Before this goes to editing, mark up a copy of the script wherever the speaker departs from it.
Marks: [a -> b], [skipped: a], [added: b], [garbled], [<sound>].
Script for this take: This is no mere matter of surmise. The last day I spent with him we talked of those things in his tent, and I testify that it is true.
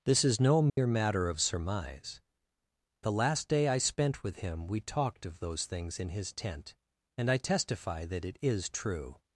This is no mere [dropout] matter of surmise. The last day I spent with him we talked of those things in his tent, and I testify that it is true.